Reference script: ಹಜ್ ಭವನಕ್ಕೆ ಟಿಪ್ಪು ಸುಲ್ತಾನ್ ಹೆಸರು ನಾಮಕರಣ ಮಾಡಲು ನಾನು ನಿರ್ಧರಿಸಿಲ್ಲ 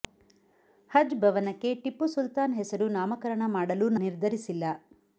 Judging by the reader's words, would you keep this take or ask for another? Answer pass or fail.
fail